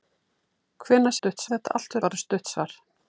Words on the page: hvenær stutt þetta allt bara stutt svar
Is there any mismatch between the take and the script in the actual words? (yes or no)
no